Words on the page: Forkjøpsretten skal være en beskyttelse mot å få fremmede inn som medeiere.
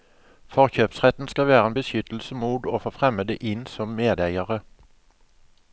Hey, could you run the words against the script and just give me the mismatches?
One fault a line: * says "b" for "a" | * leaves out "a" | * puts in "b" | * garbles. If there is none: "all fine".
all fine